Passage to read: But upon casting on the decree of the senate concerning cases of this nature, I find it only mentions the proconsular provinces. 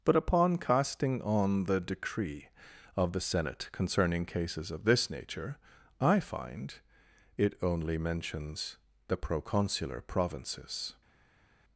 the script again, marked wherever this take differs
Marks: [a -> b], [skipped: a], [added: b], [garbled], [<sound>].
But upon casting on the decree of the senate concerning cases of this nature, I find it only mentions the proconsular provinces.